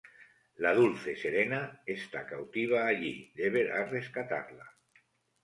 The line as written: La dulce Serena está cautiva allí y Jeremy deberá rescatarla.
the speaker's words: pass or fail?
fail